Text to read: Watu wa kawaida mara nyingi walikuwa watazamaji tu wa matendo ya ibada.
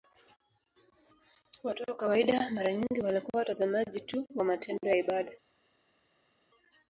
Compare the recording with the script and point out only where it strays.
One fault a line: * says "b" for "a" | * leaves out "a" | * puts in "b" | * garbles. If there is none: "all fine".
all fine